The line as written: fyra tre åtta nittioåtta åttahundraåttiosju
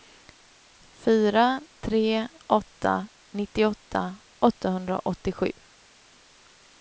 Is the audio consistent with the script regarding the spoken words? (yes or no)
yes